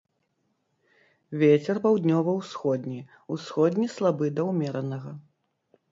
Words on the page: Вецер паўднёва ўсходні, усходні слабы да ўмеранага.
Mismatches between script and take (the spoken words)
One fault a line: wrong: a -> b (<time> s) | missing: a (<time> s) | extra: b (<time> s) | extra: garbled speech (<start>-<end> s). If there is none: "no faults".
no faults